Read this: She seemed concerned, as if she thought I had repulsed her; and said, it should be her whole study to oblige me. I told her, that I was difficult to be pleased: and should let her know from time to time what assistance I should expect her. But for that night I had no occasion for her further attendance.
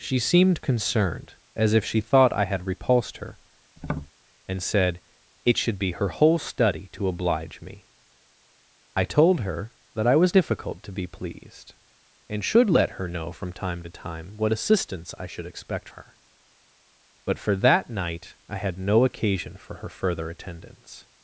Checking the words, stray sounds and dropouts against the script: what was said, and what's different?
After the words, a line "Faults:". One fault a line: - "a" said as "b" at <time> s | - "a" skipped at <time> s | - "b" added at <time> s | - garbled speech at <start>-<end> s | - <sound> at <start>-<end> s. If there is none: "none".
She seemed concerned, as if she thought I had repulsed her; and said, it should be her whole study to oblige me. I told her, that I was difficult to be pleased: and should let her know from time to time what assistance I should expect her. But for that night I had no occasion for her further attendance.
Faults:
- tap at 3.8-4.1 s